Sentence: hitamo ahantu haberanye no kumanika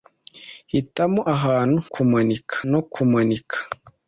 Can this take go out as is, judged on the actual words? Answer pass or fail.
fail